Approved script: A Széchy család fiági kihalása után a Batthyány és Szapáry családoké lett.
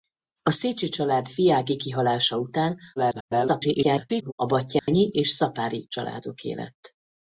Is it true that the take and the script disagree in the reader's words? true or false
true